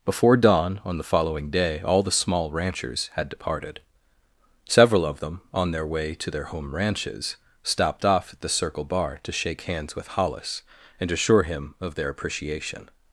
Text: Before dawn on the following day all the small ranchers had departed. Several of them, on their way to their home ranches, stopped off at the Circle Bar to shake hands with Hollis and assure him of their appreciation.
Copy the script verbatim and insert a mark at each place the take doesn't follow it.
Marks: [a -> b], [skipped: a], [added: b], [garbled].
Before dawn on the following day all the small ranchers had departed. Several of them, on their way to their home ranches, stopped off at the Circle Bar to shake hands with Hollis and assure him of their appreciation.